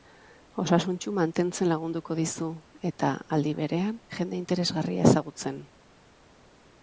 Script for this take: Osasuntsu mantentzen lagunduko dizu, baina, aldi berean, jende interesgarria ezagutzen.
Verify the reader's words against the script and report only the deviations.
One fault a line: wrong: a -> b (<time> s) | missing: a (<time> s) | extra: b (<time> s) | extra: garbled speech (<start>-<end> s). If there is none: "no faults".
wrong: baina -> eta (2.9 s)